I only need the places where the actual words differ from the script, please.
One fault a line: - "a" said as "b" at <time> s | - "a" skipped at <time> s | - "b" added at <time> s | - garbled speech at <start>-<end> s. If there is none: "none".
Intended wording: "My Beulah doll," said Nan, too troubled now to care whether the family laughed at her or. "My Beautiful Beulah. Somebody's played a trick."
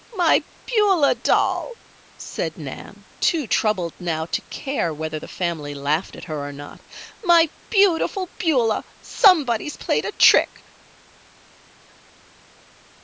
- "not" added at 6.5 s